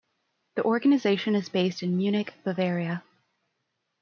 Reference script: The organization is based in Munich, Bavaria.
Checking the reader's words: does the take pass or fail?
pass